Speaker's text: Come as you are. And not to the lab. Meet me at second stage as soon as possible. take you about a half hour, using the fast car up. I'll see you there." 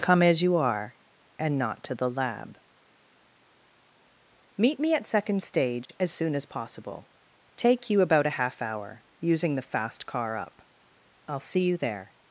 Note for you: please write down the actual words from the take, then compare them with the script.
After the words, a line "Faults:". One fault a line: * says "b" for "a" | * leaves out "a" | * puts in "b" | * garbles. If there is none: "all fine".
Come as you are. And not to the lab. Meet me at second stage as soon as possible. take you about a half hour, using the fast car up. I'll see you there."
Faults:
all fine